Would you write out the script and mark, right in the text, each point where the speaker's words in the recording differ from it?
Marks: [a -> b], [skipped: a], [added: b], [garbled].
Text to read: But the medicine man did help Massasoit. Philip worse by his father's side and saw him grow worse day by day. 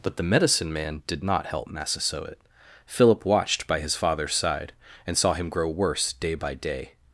But the medicine man did [added: not] help Massasoit. Philip [worse -> watched] by his father's side and saw him grow worse day by day.